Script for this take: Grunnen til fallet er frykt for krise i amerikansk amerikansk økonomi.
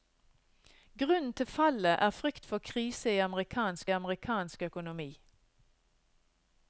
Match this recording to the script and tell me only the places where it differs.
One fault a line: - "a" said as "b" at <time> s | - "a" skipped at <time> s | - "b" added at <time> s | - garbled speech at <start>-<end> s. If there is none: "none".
none